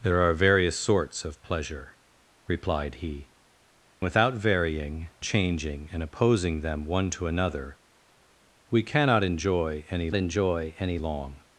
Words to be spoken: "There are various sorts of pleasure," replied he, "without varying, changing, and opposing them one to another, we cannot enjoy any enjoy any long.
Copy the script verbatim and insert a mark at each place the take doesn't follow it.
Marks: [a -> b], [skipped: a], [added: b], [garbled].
"There are various sorts of pleasure," replied he, "without varying, changing, and opposing them one to another, we cannot enjoy any enjoy any long.